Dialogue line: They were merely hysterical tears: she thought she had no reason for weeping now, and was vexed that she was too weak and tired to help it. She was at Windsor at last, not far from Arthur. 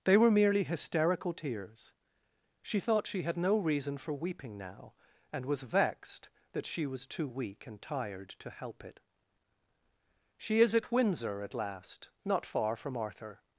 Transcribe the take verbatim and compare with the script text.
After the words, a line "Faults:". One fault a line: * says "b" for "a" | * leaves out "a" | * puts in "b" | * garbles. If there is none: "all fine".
They were merely hysterical tears: she thought she had no reason for weeping now, and was vexed that she was too weak and tired to help it. She is at Windsor at last, not far from Arthur.
Faults:
* says "is" for "was"